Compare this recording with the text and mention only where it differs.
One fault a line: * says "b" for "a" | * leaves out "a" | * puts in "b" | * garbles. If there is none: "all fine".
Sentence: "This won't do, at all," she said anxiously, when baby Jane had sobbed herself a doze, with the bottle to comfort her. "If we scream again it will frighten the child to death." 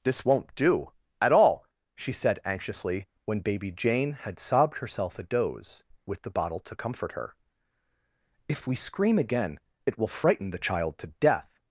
all fine